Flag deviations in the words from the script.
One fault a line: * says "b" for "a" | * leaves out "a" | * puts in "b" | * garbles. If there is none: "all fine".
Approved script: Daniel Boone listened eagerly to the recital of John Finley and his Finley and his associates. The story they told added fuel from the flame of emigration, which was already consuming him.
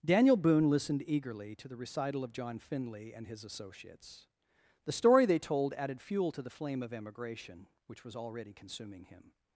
* leaves out "Finley and his"
* says "to" for "from"